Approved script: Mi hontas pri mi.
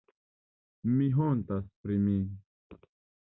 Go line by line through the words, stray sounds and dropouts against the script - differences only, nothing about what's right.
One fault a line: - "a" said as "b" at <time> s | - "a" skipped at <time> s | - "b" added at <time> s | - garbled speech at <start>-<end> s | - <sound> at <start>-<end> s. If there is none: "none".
none